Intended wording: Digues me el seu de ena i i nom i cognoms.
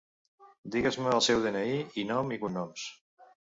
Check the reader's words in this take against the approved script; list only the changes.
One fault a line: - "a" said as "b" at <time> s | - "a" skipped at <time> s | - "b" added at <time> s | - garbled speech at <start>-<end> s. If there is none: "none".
none